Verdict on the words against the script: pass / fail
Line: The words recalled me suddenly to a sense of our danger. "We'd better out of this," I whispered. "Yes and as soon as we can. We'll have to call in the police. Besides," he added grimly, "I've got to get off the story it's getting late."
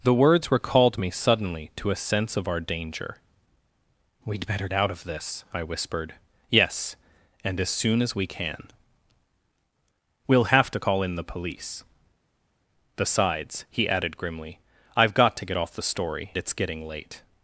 pass